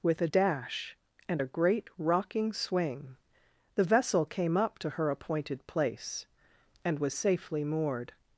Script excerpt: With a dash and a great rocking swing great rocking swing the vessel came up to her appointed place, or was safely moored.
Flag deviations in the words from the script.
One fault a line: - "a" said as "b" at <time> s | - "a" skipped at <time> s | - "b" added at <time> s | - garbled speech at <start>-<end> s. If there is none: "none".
- "great rocking swing" skipped at 3.2 s
- "or" said as "and" at 6.8 s